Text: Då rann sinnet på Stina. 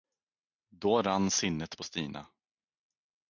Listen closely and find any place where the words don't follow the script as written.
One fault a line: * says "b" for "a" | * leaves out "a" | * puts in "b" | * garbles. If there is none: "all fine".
all fine